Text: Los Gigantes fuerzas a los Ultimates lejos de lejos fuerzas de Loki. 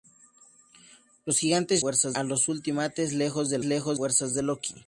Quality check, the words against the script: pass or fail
pass